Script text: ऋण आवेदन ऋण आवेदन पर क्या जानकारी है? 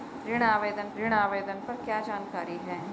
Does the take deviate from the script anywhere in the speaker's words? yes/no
no